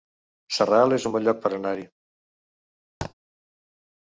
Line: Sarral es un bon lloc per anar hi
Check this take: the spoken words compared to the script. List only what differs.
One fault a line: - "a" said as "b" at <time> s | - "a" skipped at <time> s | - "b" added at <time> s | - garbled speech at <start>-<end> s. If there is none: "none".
none